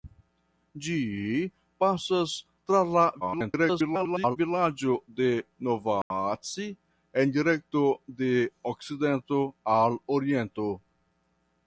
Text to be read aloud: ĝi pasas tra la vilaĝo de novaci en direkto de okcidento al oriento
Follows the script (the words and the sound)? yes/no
no